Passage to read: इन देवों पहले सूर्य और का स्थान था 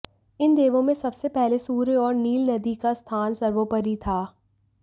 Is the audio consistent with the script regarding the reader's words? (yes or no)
no